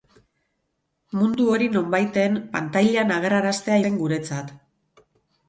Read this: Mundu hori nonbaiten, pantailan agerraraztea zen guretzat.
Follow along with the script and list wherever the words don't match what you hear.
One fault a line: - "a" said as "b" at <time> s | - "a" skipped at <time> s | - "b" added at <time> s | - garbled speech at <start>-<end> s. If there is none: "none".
none